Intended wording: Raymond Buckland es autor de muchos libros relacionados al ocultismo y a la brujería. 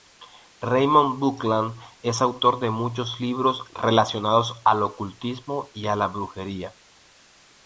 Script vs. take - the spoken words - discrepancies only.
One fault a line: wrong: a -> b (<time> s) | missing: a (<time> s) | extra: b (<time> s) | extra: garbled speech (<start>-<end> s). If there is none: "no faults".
no faults